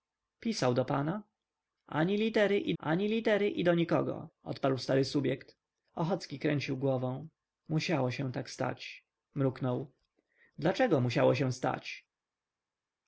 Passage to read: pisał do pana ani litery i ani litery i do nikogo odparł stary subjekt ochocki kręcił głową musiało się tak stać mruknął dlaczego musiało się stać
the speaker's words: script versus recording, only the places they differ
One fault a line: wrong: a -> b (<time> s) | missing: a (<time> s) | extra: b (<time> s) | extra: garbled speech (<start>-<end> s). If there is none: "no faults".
no faults